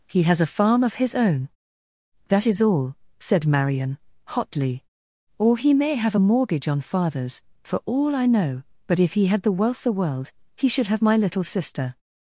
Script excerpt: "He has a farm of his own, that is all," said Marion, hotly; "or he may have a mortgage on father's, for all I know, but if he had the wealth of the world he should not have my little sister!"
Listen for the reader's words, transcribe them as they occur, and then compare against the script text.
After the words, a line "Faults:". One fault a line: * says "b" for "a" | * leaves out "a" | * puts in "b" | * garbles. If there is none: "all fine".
"He has a farm of his own, that is all," said Marion, hotly; "or he may have a mortgage on father's, for all I know, but if he had the wealth the world he should have my little sister!"
Faults:
* leaves out "of"
* leaves out "not"